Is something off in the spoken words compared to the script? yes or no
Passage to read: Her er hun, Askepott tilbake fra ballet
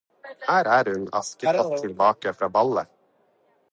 no